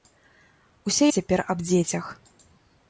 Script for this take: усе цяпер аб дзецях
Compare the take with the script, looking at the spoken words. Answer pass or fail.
pass